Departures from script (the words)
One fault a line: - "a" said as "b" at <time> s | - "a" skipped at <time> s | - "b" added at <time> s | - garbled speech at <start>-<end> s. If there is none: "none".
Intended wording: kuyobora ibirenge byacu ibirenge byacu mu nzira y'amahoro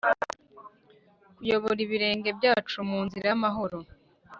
- "ibirenge byacu" skipped at 2.8 s